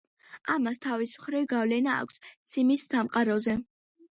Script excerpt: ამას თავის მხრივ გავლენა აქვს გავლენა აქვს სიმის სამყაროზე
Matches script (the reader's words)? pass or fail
fail